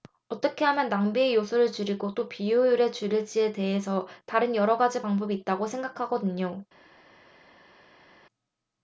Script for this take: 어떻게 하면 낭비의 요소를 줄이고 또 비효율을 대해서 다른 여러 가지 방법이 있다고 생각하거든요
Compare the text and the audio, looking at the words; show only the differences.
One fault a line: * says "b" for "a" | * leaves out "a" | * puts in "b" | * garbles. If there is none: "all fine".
* puts in "줄일지에"